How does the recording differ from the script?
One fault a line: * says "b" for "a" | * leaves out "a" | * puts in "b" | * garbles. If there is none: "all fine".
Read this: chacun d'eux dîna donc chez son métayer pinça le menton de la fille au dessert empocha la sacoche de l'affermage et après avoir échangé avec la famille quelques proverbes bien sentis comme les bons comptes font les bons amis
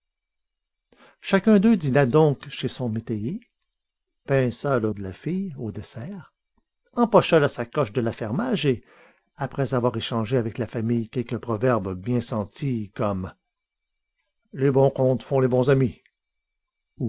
* leaves out "menton"